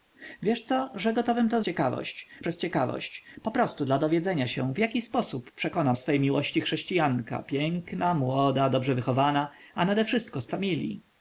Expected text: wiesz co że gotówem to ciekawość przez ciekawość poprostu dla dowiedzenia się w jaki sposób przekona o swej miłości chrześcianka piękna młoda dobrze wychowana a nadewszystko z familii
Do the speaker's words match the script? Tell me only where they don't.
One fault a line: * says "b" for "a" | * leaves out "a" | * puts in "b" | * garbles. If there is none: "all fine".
all fine